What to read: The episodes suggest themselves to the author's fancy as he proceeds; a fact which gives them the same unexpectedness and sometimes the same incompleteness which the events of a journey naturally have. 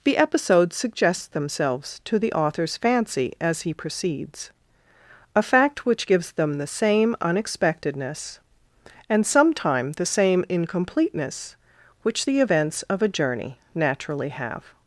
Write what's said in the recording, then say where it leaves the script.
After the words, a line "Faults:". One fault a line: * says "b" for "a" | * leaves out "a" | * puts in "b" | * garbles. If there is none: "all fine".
The episodes suggest themselves to the author's fancy as he proceeds; a fact which gives them the same unexpectedness and sometime the same incompleteness which the events of a journey naturally have.
Faults:
* says "sometime" for "sometimes"